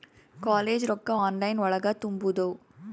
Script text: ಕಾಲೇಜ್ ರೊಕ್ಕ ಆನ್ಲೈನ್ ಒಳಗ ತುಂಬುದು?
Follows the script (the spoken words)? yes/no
yes